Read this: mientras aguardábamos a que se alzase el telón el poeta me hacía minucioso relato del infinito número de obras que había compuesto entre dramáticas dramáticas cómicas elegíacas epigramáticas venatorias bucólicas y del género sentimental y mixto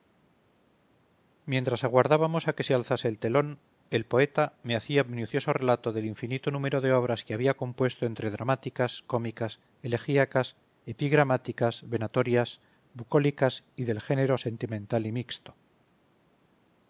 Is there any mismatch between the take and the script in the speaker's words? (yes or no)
yes